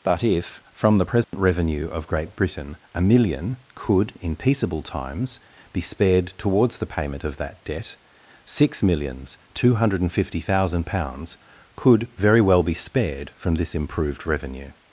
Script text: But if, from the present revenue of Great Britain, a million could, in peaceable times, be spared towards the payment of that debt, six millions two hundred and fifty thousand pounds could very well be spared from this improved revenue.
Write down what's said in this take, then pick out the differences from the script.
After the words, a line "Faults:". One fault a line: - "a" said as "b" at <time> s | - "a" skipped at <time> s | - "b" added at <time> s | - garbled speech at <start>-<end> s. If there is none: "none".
But if, from the present revenue of Great Britain, a million could, in peaceable times, be spared towards the payment of that debt, six millions two hundred and fifty thousand pounds could very well be spared from this improved revenue.
Faults:
none